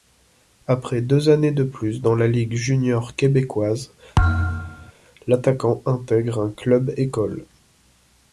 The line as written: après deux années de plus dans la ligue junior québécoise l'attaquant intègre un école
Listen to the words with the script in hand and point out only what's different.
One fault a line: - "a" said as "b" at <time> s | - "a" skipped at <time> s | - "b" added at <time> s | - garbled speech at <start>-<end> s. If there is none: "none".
- "club" added at 6.5 s